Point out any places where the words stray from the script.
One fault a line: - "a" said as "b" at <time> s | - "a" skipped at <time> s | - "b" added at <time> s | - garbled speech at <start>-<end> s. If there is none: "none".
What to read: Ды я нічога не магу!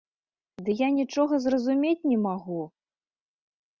- "зразумець" added at 1.4 s